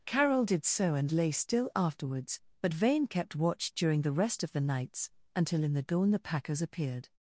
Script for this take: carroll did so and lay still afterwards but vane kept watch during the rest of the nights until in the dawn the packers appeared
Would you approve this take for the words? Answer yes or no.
yes